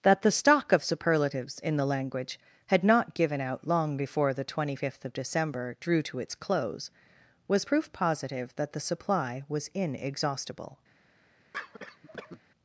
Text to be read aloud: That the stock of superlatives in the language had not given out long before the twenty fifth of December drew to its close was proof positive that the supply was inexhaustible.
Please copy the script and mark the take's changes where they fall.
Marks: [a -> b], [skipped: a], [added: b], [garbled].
That the stock of superlatives in the language had not given out long before the twenty fifth of December drew to its close was proof positive that the supply was inexhaustible.